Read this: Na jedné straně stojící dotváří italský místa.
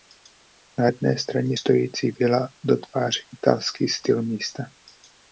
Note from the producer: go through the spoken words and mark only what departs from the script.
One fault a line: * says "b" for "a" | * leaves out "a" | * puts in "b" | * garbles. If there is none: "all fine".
* puts in "vila"
* puts in "styl"